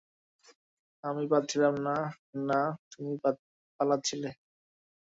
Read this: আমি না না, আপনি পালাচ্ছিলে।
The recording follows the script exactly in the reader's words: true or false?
false